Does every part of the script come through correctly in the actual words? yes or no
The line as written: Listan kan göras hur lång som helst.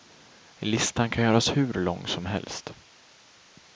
yes